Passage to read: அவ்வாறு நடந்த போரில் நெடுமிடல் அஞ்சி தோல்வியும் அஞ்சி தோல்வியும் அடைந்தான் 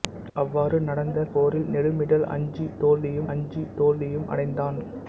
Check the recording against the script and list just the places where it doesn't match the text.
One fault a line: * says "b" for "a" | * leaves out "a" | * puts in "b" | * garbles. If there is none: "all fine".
all fine